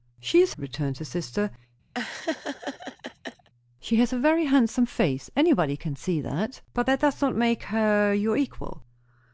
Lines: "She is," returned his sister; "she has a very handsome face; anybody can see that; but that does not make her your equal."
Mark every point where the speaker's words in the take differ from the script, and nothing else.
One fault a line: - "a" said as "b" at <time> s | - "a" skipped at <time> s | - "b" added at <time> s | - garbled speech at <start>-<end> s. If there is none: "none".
none